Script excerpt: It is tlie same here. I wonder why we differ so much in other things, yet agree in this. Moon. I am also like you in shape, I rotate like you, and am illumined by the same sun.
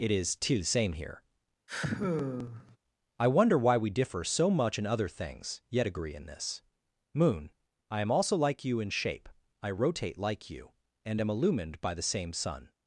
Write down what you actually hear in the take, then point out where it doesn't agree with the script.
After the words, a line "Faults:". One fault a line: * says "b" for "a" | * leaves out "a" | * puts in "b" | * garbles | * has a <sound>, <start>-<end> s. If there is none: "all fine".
It is too the same here. I wonder why we differ so much in other things, yet agree in this. Moon. I am also like you in shape, I rotate like you, and am illumined by the same sun.
Faults:
* says "too the" for "tlie"
* has a sigh, 1.7-2.8 s